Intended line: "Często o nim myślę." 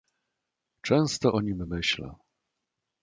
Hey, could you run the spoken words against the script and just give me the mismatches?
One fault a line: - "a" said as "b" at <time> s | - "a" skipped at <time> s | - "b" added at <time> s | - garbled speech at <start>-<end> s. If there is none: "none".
none